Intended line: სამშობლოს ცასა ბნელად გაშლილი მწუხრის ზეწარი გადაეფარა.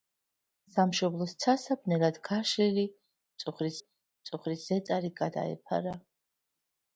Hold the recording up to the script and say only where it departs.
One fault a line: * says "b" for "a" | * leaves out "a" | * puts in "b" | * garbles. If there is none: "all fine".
* puts in "მწუხრის"